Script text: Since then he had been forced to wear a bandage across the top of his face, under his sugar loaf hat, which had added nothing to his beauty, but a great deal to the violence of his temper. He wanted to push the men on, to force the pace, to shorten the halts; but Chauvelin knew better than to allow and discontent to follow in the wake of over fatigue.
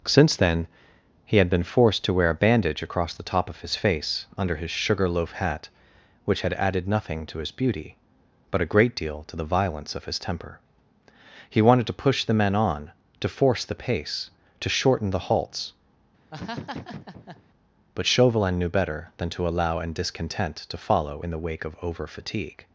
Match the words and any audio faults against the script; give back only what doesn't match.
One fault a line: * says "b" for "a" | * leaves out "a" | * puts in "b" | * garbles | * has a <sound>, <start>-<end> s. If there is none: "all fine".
* has a laugh, 16.3-17.4 s